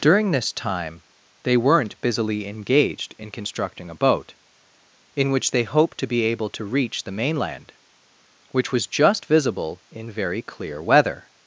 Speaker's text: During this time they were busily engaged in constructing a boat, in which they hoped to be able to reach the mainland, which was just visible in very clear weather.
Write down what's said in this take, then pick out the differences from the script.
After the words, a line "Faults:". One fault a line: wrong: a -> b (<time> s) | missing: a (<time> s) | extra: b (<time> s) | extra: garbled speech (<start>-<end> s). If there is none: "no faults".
During this time they weren't busily engaged in constructing a boat, in which they hoped to be able to reach the mainland, which was just visible in very clear weather.
Faults:
wrong: were -> weren't (1.6 s)